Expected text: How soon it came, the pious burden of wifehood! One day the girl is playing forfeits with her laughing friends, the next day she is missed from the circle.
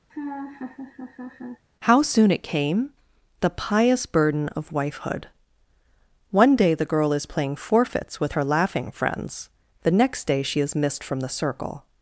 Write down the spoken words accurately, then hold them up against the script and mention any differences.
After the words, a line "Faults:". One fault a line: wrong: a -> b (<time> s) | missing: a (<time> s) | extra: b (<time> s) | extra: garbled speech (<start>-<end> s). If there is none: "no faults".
How soon it came, the pious burden of wifehood! One day the girl is playing forfeits with her laughing friends, the next day she is missed from the circle.
Faults:
no faults